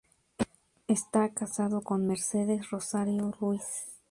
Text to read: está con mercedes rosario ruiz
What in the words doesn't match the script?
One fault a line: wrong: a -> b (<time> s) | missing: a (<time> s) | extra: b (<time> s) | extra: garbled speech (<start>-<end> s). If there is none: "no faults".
extra: casado (1.3 s)